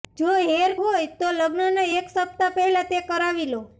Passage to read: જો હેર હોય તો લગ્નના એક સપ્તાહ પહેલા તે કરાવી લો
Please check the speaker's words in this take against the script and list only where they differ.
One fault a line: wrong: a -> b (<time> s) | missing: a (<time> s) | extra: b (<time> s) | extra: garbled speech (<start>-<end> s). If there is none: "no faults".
no faults